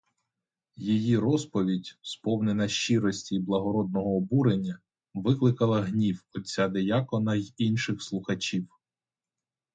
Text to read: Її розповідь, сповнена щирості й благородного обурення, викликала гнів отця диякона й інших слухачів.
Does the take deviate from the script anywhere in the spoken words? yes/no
no